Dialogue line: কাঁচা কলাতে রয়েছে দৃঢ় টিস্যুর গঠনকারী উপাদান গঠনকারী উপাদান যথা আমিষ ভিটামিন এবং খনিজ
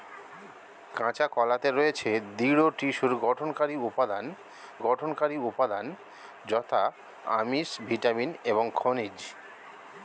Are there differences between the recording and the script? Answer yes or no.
no